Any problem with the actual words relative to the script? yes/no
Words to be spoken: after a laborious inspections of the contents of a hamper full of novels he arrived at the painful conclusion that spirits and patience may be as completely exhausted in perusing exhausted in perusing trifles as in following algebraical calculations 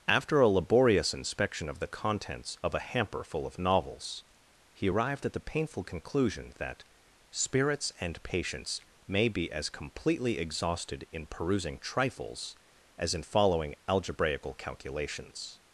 yes